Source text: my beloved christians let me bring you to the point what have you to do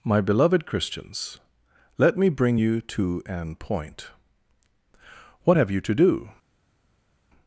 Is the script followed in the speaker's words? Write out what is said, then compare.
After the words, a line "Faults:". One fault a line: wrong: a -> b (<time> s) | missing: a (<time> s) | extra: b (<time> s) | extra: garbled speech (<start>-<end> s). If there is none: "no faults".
my beloved christians let me bring you to an point what have you to do
Faults:
wrong: the -> an (3.2 s)